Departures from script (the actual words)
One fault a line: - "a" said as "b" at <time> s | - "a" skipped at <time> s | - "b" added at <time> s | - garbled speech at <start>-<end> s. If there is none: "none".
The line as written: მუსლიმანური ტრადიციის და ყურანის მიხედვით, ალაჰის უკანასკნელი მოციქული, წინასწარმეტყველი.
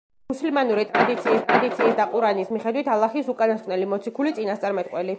- "ტრადიციის" added at 1.5 s